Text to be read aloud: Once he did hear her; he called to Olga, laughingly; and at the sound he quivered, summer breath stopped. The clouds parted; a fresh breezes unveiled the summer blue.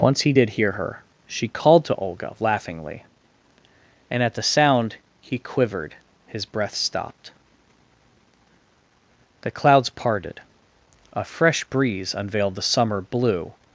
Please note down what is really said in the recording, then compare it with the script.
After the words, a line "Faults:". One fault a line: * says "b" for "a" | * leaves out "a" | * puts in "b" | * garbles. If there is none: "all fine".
Once he did hear her; she called to Olga, laughingly; and at the sound he quivered, his breath stopped. The clouds parted; a fresh breeze unveiled the summer blue.
Faults:
* says "she" for "he"
* says "his" for "summer"
* says "breeze" for "breezes"